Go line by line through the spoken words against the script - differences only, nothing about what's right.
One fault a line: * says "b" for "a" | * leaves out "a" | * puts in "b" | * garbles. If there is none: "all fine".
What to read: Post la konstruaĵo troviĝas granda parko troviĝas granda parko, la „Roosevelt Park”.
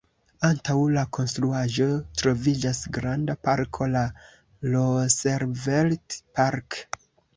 * says "Antaŭ" for "Post"
* leaves out "troviĝas granda parko"